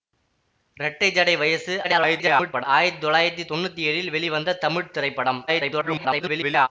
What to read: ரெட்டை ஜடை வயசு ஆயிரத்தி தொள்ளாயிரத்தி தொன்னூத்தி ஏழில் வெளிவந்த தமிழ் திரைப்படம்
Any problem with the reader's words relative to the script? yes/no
yes